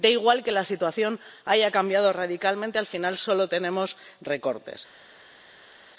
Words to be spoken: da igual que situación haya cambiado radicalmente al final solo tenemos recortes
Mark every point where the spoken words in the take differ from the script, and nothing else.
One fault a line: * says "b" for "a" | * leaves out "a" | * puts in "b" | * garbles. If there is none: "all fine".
* puts in "la"